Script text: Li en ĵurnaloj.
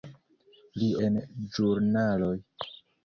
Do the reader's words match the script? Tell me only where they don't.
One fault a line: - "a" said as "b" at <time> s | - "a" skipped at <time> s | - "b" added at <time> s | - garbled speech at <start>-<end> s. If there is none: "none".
none